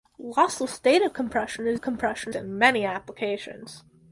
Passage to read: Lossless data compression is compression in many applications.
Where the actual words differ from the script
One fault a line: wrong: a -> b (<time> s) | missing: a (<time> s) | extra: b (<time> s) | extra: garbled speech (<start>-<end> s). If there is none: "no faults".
no faults